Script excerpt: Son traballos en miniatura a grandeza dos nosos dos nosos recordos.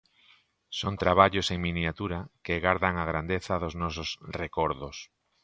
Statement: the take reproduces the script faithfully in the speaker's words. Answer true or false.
false